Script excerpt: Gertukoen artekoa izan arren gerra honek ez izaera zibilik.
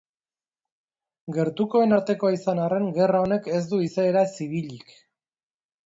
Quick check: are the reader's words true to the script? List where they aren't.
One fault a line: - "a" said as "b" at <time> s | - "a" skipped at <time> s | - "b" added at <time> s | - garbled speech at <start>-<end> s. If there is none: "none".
- "du" added at 3.7 s